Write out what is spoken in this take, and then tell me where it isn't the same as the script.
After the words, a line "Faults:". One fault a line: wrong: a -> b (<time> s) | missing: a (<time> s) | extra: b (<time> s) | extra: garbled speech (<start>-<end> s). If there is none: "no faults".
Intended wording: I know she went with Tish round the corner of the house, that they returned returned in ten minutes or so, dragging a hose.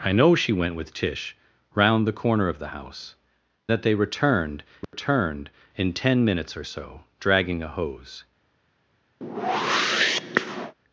I know she went with Tish round the corner of the house, that they returned returned in ten minutes or so, dragging a hose.
Faults:
no faults